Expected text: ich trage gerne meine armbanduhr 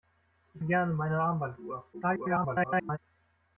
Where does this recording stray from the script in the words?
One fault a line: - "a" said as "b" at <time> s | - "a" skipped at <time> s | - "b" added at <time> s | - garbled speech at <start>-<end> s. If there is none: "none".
- "trage" skipped at 0.6 s
- garbled speech at 1.9-3.0 s